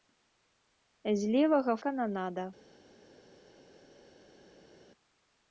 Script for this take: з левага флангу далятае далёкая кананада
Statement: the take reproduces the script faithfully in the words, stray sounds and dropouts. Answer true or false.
false